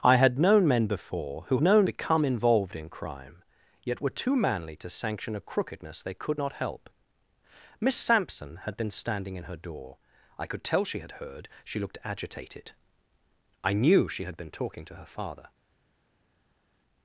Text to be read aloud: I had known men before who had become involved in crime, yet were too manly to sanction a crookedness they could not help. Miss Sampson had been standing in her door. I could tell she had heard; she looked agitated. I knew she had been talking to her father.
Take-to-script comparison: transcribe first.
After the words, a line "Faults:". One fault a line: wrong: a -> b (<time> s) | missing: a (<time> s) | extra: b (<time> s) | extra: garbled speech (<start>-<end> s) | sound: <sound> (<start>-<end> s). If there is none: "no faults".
I had known men before who known become involved in crime, yet were too manly to sanction a crookedness they could not help. Miss Sampson had been standing in her door. I could tell she had heard; she looked agitated. I knew she had been talking to her father.
Faults:
wrong: had -> known (1.6 s)